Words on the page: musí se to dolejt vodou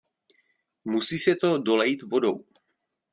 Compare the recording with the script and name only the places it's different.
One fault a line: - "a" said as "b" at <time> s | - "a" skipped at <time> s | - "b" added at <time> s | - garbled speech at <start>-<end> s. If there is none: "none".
none